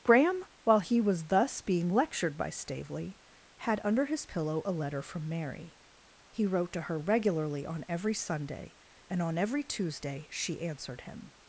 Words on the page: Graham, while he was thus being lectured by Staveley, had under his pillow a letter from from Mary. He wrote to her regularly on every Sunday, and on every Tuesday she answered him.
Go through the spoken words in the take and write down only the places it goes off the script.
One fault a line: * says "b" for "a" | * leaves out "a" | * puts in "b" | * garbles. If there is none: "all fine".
* leaves out "from"